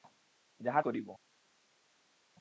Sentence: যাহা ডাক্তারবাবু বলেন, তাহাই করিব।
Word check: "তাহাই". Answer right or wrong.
wrong